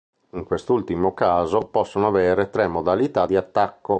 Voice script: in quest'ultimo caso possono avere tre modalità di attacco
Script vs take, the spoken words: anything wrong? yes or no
no